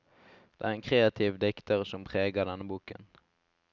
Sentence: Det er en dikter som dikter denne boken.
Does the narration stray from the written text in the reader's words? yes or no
yes